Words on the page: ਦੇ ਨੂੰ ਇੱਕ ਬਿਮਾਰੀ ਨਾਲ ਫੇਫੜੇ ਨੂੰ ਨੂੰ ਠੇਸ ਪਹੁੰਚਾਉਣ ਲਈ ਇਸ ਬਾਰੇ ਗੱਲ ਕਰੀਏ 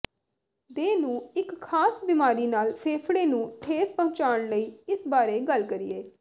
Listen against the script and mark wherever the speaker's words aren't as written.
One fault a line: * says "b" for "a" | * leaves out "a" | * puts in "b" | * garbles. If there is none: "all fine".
* puts in "ਖਾਸ"
* leaves out "ਨੂੰ"